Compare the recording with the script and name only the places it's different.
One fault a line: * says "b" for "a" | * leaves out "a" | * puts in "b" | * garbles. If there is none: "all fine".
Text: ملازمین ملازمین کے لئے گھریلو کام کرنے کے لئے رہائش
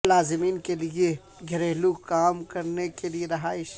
* leaves out "ملازمین"